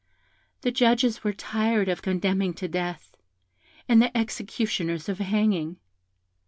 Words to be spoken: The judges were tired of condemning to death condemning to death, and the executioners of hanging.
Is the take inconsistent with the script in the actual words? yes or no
yes